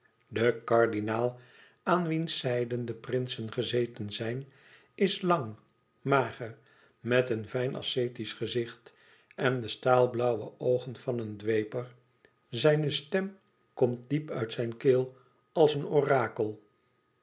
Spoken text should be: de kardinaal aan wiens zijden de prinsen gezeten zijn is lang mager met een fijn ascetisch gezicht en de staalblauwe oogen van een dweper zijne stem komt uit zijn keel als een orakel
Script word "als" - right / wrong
right